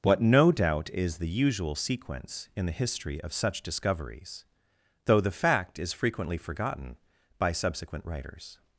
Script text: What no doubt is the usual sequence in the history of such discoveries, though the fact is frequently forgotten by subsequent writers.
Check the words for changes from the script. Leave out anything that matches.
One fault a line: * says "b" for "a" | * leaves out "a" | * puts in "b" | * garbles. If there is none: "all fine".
all fine